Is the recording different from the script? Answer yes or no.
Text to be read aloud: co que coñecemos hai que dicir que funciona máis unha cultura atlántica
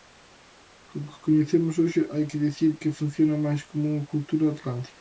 yes